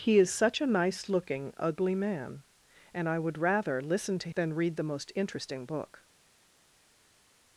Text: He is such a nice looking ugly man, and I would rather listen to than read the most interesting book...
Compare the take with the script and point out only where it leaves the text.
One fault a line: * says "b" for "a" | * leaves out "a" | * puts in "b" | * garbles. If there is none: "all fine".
all fine